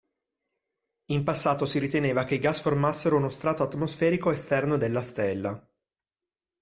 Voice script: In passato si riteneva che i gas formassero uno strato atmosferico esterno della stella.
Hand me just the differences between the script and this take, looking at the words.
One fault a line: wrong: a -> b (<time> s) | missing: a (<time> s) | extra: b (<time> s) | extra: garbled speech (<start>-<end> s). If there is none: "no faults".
no faults